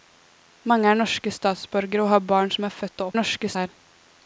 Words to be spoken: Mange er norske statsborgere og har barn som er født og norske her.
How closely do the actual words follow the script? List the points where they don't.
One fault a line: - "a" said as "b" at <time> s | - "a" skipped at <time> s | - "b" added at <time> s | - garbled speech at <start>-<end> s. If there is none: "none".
none